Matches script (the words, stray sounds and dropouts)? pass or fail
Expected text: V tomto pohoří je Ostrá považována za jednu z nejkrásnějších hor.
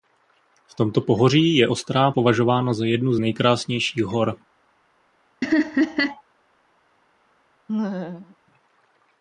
fail